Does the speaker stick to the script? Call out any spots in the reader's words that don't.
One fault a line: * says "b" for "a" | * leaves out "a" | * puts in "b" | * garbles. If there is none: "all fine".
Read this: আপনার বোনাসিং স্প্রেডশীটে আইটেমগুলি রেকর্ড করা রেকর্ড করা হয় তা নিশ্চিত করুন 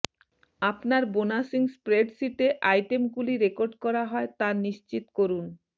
* leaves out "রেকর্ড করা"